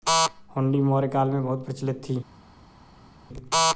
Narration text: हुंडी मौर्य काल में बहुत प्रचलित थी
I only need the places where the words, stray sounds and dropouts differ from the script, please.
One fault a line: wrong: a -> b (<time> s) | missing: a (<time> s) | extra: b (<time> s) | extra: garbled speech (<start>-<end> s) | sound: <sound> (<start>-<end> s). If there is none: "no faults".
no faults